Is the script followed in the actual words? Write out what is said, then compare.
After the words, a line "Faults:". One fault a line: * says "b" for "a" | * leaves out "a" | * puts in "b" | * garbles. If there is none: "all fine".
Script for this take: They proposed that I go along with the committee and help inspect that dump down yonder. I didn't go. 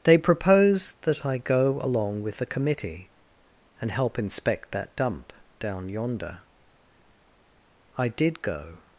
They proposed that I go along with the committee and help inspect that dump down yonder. I did go.
Faults:
* says "did" for "didn't"